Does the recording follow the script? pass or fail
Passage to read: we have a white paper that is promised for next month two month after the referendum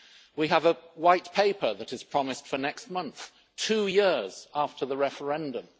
fail